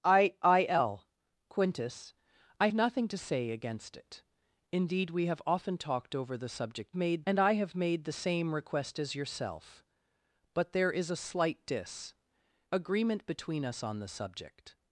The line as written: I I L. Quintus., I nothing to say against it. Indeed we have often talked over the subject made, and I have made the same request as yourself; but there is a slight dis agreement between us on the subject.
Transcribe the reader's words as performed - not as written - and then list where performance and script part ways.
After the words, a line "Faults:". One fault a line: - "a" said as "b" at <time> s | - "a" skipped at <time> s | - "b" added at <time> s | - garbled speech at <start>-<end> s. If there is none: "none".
I I L. Quintus., I nothing to say against it. Indeed we have often talked over the subject made, and I have made the same request as yourself; but there is a slight dis agreement between us on the subject.
Faults:
none